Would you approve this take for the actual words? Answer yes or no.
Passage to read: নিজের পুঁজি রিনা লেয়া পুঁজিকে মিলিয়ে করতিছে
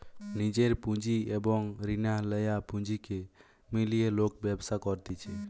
no